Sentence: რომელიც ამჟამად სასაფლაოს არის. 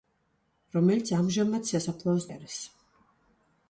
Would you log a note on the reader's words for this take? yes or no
no